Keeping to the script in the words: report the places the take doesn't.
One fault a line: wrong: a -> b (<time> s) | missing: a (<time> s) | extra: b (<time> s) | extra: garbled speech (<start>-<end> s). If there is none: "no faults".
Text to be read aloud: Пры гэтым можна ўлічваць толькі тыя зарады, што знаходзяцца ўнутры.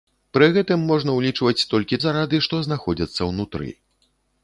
missing: тыя (2.0 s)